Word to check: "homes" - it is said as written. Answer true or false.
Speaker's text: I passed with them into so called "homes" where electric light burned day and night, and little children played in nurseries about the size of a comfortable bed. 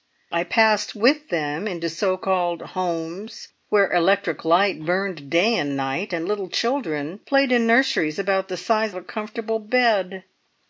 true